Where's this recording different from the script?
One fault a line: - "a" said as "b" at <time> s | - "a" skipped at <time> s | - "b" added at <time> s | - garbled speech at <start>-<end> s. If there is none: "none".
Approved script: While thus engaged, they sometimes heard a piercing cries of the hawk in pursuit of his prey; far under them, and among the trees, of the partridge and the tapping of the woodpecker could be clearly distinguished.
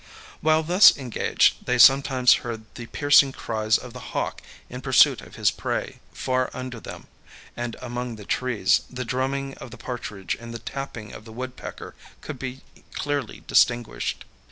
- "a" said as "the" at 2.7 s
- "the drumming" added at 8.9 s